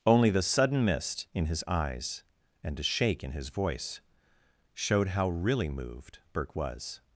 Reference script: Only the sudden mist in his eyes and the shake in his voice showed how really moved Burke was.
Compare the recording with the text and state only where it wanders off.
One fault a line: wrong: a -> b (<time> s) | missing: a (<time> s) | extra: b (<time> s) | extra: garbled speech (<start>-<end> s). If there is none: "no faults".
wrong: the -> a (2.8 s)